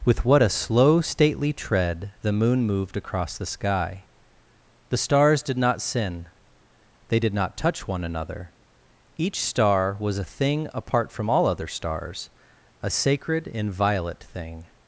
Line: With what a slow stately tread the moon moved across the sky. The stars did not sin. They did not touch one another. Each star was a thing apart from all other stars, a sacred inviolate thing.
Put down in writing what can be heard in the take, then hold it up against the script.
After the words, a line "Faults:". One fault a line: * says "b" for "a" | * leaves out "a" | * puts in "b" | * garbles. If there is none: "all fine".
With what a slow stately tread the moon moved across the sky. The stars did not sin. They did not touch one another. Each star was a thing apart from all other stars, a sacred inviolate thing.
Faults:
all fine